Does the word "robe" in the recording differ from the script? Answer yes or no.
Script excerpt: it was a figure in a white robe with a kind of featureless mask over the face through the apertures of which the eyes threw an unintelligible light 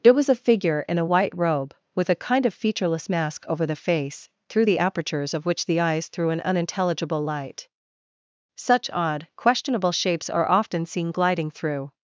no